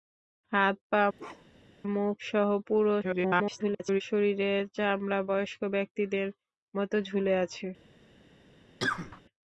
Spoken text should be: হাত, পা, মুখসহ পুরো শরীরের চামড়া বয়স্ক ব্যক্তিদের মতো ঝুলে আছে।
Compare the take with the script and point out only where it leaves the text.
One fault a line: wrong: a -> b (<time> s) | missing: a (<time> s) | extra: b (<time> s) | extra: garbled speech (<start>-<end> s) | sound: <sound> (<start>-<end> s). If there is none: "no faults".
sound: bark (1.2-1.8 s)
extra: garbled speech (3.0-4.0 s)
sound: cough (8.8-9.2 s)